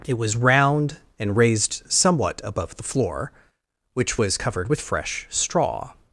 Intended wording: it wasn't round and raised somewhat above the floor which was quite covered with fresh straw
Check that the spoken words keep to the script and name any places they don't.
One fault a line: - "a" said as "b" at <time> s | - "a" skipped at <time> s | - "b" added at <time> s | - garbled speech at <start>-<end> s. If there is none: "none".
- "wasn't" said as "was" at 0.2 s
- "quite" skipped at 4.4 s